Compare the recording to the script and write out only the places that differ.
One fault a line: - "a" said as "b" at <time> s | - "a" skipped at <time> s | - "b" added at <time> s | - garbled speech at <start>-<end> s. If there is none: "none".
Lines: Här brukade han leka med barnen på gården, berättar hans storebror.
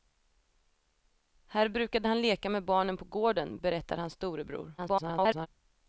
- garbled speech at 4.8-5.5 s